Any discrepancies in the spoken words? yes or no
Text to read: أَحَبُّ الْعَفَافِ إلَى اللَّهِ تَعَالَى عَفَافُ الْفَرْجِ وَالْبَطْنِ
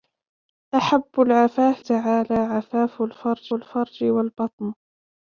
yes